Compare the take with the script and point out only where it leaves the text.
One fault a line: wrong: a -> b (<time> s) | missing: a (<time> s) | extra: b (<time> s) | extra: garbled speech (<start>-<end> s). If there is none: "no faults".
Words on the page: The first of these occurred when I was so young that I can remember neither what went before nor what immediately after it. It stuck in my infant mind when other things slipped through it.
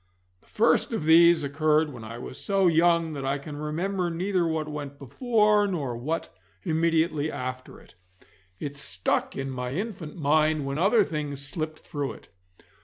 no faults